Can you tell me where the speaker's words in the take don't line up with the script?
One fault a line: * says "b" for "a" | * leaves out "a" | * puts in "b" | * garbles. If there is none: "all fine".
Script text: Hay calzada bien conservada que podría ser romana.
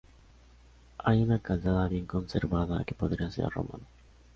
* puts in "una"